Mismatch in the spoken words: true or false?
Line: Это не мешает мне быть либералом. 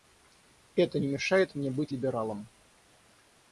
false